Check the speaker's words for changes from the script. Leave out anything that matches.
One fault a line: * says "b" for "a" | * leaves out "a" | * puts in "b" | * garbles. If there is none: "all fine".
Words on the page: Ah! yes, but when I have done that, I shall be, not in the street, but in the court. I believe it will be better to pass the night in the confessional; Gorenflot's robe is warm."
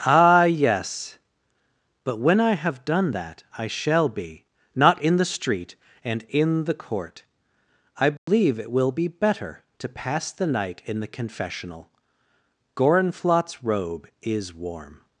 * says "and" for "but"